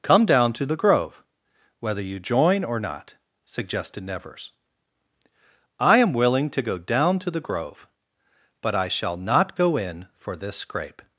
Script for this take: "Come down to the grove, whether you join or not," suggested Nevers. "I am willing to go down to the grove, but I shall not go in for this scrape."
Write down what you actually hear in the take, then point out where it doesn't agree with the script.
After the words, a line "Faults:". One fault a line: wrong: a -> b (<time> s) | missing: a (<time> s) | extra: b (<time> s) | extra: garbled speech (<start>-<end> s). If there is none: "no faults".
"Come down to the grove, whether you join or not," suggested Nevers. "I am willing to go down to the grove, but I shall not go in for this scrape."
Faults:
no faults